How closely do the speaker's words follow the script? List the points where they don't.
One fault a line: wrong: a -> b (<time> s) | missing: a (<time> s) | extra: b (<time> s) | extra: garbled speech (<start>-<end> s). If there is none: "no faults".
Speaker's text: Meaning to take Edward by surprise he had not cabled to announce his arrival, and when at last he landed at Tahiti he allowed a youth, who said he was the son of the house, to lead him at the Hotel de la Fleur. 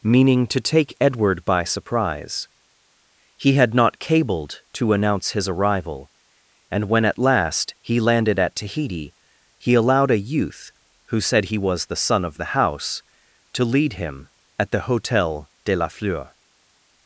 no faults